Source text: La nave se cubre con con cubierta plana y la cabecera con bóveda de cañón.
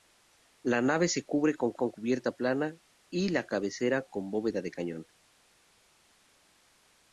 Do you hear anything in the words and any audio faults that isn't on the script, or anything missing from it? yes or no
no